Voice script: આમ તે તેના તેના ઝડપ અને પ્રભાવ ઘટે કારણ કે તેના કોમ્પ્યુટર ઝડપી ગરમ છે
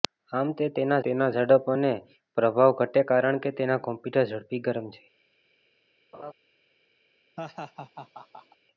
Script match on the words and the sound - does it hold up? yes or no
no